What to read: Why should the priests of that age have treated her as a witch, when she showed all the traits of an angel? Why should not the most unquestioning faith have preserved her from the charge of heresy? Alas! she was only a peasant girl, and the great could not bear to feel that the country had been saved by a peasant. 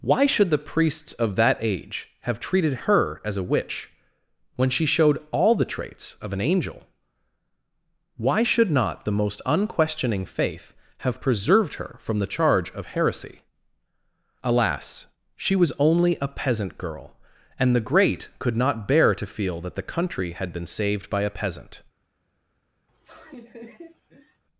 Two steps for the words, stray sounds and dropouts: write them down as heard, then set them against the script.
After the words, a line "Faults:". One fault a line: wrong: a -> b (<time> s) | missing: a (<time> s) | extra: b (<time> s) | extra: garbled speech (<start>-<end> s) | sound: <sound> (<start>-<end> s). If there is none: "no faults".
Why should the priests of that age have treated her as a witch, when she showed all the traits of an angel? Why should not the most unquestioning faith have preserved her from the charge of heresy? Alas! she was only a peasant girl, and the great could not bear to feel that the country had been saved by a peasant.
Faults:
sound: laugh (22.9-24.4 s)